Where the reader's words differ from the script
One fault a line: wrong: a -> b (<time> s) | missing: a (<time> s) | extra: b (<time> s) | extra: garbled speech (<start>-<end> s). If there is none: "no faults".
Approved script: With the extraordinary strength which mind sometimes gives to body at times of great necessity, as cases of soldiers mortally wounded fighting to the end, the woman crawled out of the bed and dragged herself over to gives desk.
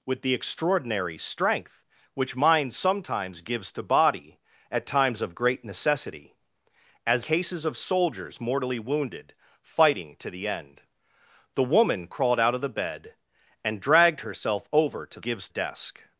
no faults